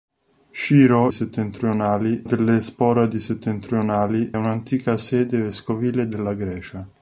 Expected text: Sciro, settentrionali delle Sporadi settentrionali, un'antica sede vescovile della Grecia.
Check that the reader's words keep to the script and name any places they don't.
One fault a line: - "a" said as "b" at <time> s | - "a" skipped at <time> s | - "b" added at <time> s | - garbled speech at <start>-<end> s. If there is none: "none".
none